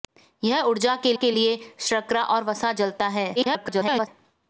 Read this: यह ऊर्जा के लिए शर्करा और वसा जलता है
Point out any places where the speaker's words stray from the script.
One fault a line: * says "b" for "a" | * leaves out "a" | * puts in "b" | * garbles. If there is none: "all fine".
* puts in "के"
* garbles